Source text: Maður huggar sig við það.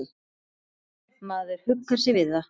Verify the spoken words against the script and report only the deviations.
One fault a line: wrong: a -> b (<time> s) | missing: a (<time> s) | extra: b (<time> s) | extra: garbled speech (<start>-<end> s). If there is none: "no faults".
no faults